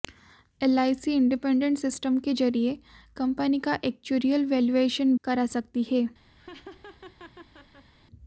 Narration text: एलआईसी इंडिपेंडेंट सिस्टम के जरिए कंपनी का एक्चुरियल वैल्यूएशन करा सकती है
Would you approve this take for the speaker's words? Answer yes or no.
yes